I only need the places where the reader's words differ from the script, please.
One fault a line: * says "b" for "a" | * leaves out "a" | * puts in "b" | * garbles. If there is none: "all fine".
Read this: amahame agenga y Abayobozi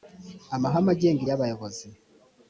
all fine